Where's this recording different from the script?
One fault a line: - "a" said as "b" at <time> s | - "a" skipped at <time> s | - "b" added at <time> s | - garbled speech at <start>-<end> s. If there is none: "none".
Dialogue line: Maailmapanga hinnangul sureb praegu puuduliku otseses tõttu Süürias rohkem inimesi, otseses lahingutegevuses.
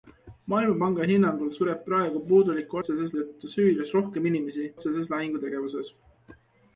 none